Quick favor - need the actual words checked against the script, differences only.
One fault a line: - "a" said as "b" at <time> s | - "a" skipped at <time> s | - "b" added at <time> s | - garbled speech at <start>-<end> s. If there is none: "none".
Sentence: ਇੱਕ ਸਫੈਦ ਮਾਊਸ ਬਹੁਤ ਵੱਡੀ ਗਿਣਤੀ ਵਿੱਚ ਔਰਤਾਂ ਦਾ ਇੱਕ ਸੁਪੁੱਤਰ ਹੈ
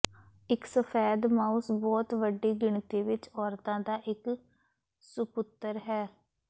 none